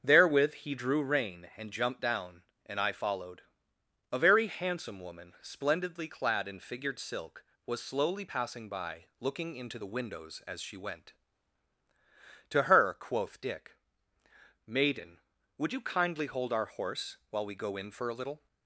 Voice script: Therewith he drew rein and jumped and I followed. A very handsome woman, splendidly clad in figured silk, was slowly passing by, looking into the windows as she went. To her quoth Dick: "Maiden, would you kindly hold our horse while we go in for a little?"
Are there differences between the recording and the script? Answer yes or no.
yes